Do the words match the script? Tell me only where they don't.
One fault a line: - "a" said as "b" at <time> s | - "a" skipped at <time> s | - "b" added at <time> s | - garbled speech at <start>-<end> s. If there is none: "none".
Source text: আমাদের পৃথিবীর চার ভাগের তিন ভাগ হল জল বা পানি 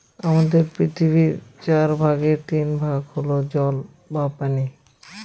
none